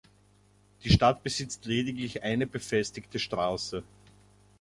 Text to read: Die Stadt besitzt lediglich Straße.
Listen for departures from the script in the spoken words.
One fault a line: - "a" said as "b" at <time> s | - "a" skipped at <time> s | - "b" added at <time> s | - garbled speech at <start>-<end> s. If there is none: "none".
- "eine befestigte" added at 2.2 s